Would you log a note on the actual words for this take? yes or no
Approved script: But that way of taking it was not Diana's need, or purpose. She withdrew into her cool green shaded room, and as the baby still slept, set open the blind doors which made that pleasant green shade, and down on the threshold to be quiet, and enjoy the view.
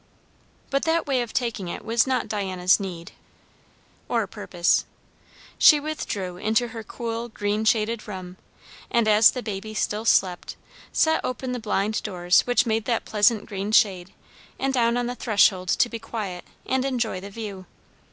no